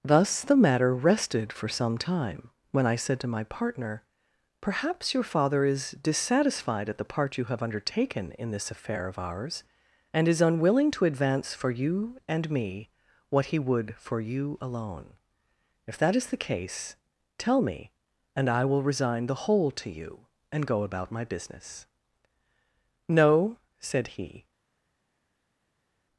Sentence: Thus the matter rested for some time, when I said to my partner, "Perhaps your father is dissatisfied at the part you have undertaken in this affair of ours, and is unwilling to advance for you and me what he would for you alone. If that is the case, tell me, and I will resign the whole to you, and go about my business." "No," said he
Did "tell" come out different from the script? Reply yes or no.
no